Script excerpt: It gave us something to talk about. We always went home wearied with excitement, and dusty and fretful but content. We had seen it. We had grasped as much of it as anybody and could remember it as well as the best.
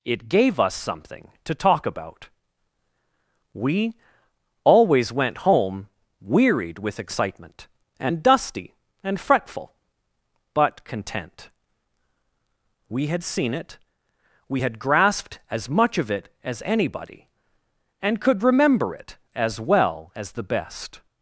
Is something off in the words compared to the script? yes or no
no